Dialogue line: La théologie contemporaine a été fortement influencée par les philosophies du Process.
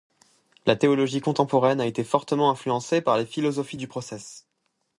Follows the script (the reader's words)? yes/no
yes